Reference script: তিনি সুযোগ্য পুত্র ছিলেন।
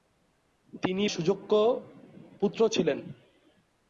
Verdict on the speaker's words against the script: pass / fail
pass